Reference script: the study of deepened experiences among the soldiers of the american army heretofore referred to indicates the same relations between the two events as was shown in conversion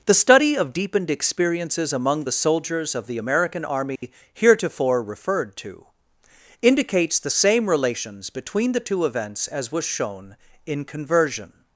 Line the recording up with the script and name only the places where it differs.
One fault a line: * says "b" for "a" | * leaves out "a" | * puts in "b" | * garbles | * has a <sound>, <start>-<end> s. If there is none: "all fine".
* has a dropout, 4.0-4.0 s